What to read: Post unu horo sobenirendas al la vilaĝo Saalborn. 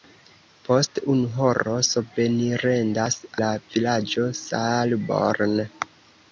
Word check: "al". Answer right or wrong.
wrong